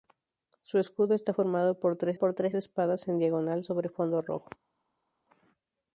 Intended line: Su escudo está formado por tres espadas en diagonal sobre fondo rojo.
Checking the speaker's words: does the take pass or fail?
fail